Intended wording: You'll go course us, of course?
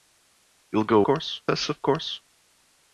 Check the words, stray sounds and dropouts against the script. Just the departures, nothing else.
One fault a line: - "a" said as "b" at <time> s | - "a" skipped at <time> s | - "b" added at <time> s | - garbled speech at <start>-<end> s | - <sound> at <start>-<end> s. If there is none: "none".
none